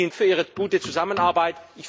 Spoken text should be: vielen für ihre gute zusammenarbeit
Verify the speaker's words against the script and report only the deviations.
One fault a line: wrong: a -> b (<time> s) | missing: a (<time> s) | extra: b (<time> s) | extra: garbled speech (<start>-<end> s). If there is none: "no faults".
no faults